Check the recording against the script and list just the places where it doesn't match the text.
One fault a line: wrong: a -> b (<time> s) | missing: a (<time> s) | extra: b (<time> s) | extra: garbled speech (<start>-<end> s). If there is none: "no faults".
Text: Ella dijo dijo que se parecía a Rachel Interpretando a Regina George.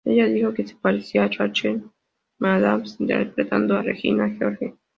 missing: dijo (0.5 s)
extra: McAdams (2.4 s)